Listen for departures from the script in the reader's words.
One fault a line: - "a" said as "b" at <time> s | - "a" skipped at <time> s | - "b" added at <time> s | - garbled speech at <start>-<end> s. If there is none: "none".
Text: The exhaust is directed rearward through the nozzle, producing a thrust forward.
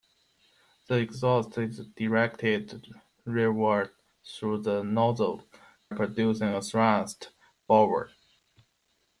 none